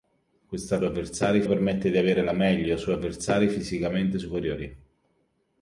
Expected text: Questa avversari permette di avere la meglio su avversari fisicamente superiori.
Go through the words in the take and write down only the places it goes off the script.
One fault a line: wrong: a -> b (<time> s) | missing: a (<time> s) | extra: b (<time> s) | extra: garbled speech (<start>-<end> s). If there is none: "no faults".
no faults